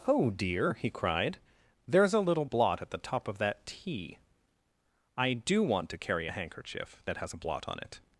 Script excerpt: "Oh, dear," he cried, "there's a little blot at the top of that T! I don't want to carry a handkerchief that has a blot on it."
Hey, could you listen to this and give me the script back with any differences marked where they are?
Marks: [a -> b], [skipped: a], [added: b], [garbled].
"Oh, dear," he cried, "there's a little blot at the top of that T! I [don't -> do] want to carry a handkerchief that has a blot on it."